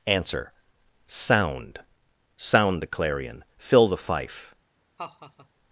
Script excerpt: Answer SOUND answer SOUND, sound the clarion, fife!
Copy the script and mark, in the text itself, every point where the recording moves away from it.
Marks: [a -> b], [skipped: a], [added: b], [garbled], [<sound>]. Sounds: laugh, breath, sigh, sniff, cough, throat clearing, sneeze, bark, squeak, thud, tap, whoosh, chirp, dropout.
Answer SOUND [skipped: answer] SOUND, [skipped: sound] the clarion, [added: fill the] fife! [laugh]